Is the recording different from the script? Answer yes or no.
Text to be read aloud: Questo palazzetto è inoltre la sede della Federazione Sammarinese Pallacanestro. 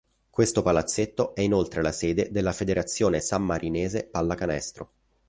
no